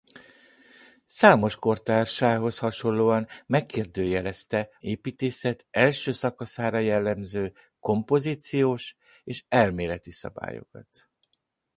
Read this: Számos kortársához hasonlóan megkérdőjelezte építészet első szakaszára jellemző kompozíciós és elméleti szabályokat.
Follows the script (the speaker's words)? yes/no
yes